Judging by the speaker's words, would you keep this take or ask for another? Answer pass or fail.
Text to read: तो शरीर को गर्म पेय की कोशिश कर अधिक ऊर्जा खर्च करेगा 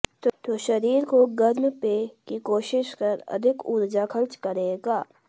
pass